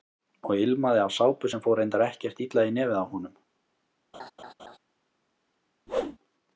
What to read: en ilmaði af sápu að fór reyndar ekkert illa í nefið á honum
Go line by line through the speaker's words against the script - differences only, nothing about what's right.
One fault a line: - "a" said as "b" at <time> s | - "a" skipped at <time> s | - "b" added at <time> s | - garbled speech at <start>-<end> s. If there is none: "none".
- "en" said as "og" at 0.5 s
- "að" said as "sem" at 1.5 s